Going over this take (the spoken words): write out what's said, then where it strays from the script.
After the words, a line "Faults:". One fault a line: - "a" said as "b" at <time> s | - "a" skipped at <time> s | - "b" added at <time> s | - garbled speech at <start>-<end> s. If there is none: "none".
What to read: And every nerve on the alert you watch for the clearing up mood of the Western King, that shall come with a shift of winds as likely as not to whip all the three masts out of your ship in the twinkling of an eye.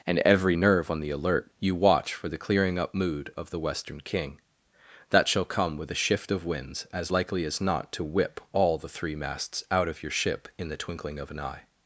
And every nerve on the alert you watch for the clearing up mood of the Western King, that shall come with a shift of winds as likely as not to whip all the three masts out of your ship in the twinkling of an eye.
Faults:
none